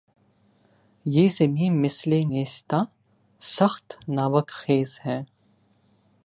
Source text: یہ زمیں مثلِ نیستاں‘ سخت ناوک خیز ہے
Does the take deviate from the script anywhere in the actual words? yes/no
no